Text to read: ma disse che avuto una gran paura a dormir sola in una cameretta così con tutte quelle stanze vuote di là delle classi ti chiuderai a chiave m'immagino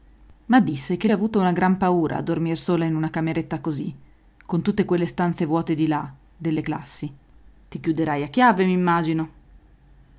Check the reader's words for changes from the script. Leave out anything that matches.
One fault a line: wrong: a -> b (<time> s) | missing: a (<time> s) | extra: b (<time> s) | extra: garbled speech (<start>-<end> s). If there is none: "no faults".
no faults